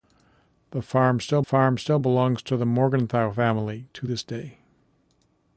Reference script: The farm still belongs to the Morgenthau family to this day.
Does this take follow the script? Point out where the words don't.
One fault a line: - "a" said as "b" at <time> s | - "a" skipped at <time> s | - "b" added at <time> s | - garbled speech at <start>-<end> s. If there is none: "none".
- "farm still" added at 1.4 s